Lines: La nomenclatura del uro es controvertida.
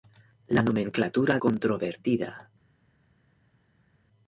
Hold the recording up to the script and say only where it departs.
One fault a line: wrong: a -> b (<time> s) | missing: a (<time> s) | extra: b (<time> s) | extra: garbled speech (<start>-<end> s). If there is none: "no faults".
missing: del uro es (1.4 s)